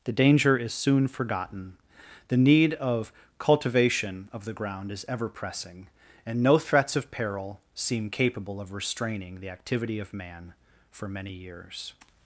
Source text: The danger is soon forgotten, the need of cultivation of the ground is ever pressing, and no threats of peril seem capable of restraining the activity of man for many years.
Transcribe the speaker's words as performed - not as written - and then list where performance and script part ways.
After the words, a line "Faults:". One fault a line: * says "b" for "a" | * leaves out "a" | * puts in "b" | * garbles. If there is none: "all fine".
The danger is soon forgotten, the need of cultivation of the ground is ever pressing, and no threats of peril seem capable of restraining the activity of man for many years.
Faults:
all fine